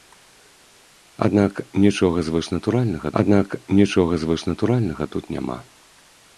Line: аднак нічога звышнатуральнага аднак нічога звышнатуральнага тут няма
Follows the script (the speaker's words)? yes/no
yes